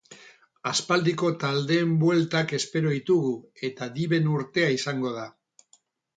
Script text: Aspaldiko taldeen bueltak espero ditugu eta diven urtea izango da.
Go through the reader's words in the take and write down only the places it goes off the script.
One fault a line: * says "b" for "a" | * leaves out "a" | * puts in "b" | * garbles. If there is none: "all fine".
all fine